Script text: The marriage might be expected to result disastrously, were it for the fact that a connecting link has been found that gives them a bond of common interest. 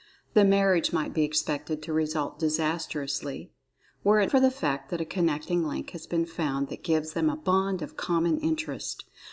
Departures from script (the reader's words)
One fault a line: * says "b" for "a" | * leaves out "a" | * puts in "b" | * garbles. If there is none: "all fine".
all fine